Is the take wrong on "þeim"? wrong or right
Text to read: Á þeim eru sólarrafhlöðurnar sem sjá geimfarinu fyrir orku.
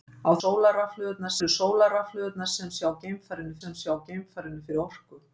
wrong